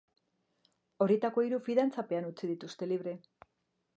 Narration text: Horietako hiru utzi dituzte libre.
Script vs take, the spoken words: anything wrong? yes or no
yes